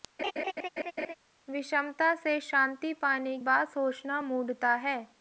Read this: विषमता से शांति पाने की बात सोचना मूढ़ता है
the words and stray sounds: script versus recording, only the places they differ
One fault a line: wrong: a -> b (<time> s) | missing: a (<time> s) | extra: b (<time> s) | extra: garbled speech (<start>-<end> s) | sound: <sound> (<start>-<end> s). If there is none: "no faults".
sound: laugh (0.2-1.1 s)
missing: की (3.4 s)